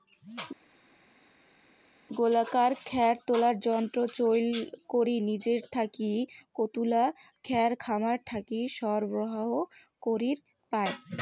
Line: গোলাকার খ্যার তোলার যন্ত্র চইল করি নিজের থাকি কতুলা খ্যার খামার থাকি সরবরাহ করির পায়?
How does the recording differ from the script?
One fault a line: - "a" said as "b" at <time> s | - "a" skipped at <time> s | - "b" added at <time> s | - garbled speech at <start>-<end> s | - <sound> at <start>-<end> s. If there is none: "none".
none